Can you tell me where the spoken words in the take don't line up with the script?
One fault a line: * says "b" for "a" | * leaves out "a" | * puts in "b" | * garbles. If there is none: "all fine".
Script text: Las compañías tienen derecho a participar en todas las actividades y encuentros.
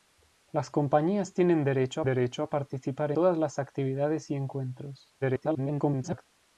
* puts in "derecho"
* leaves out "en"
* garbles